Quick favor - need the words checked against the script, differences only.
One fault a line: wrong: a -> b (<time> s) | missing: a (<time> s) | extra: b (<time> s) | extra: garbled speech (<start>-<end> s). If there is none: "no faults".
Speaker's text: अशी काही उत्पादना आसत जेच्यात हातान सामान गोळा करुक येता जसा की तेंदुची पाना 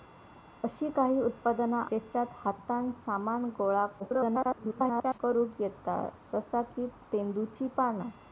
missing: आसत (1.8 s)
extra: garbled speech (4.0-5.2 s)